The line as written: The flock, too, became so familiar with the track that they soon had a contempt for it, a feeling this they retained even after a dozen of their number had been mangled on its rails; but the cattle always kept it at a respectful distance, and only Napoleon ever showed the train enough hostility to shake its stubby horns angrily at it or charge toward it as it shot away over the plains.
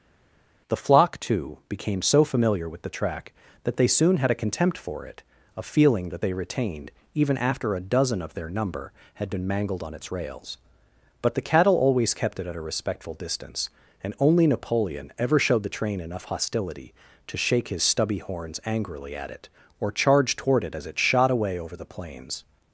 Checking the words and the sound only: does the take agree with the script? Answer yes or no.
no